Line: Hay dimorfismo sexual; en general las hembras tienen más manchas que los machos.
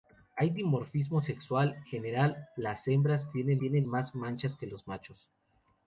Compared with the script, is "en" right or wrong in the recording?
wrong